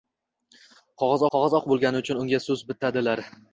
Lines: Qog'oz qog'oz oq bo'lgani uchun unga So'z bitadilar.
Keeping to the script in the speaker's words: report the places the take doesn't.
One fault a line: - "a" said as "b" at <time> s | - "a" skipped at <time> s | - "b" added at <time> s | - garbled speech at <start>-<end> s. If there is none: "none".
none